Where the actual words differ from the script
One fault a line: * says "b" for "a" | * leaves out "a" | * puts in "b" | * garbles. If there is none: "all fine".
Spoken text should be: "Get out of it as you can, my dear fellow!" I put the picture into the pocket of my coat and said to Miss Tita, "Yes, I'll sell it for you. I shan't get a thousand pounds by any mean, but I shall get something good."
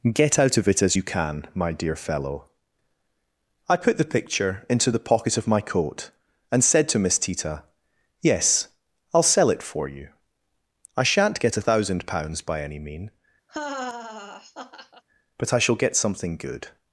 all fine